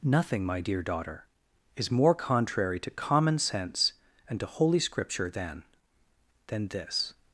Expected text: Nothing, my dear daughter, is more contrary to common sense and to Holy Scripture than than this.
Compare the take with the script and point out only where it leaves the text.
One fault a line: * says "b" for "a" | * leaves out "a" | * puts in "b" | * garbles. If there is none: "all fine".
all fine